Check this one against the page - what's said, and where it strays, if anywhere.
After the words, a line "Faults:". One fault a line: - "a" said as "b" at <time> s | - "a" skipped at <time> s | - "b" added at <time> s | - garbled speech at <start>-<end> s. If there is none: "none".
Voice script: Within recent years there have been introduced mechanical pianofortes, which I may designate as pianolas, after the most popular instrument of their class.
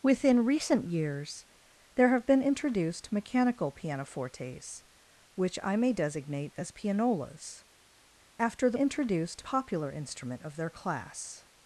Within recent years there have been introduced mechanical pianofortes, which I may designate as pianolas, after the introduced popular instrument of their class.
Faults:
- "most" said as "introduced" at 8.7 s